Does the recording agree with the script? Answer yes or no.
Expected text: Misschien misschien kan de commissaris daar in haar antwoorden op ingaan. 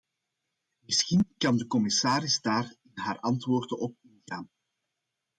no